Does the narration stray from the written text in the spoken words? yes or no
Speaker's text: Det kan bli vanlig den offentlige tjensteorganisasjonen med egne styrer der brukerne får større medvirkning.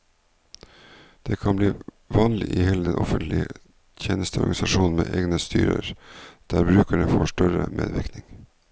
yes